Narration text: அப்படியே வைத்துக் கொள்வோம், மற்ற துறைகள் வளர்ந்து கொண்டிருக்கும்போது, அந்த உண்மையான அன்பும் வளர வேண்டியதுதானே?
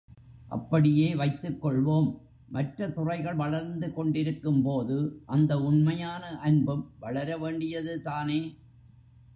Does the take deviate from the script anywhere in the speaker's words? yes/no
no